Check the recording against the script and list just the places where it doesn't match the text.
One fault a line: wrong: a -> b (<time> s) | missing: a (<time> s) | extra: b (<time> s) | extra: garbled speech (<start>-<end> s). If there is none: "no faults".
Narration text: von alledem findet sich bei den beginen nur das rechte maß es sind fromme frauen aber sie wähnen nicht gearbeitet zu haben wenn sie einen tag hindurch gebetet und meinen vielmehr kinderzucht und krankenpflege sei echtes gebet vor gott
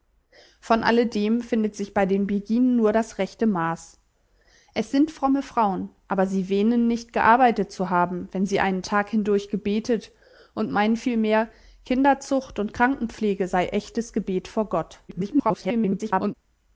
extra: garbled speech (15.1-16.3 s)